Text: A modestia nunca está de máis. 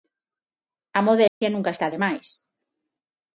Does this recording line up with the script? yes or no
yes